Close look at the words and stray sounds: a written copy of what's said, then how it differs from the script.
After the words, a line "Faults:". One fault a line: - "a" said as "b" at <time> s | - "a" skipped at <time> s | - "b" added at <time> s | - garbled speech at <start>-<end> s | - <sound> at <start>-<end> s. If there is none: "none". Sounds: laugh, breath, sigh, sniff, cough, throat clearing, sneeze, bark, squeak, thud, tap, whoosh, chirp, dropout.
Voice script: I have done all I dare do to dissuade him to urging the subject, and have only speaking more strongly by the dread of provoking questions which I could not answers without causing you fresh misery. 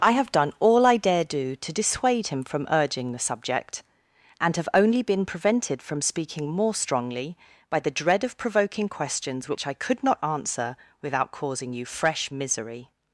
I have done all I dare do to dissuade him from urging the subject, and have only been prevented from speaking more strongly by the dread of provoking questions which I could not answer without causing you fresh misery.
Faults:
- "to" said as "from" at 2.4 s
- "been prevented from" added at 5.0 s
- "answers" said as "answer" at 10.2 s